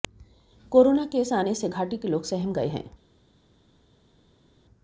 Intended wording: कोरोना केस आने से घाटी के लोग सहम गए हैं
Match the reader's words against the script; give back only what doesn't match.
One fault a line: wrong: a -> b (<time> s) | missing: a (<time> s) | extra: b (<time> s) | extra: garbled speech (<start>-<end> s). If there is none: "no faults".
no faults